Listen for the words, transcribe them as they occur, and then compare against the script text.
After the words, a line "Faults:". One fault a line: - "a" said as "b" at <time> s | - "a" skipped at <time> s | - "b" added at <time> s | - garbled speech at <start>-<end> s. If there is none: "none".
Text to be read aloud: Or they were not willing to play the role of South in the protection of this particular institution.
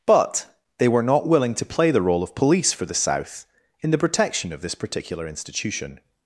But they were not willing to play the role of police for the South in the protection of this particular institution.
Faults:
- "Or" said as "But" at 0.1 s
- "police for the" added at 2.3 s